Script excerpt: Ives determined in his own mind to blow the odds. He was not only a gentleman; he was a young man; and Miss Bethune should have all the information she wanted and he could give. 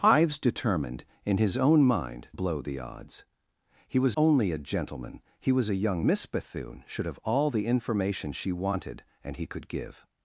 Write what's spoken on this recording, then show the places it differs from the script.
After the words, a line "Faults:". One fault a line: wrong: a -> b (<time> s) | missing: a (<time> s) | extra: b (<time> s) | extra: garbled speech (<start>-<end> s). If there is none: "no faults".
Ives determined in his own mind blow the odds. He was only a gentleman; he was a young Miss Bethune should have all the information she wanted and he could give.
Faults:
missing: to (2.3 s)
missing: not (4.2 s)
missing: man and (6.1 s)